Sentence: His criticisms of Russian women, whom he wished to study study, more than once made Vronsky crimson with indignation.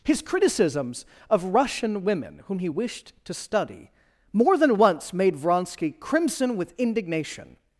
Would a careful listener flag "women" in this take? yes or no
no